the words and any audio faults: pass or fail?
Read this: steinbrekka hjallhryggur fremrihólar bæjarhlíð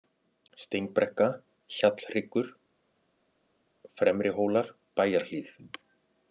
pass